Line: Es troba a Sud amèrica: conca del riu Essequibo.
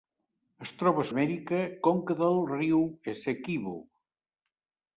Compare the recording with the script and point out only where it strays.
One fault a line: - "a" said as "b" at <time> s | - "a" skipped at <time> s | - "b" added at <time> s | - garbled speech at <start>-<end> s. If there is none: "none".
- "Sud" skipped at 1.1 s